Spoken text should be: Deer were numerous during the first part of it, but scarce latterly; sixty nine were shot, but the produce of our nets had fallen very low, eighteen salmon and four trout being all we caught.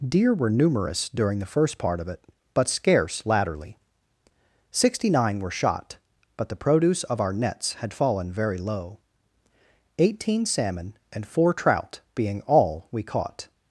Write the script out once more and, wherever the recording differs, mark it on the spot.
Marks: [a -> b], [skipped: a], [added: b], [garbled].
Deer were numerous during the first part of it, but scarce latterly; sixty nine were shot, but the produce of our nets had fallen very low, eighteen salmon and four trout being all we caught.